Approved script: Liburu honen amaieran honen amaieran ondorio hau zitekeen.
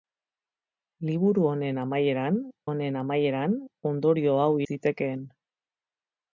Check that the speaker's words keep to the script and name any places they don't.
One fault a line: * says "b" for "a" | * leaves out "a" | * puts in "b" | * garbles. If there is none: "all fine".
all fine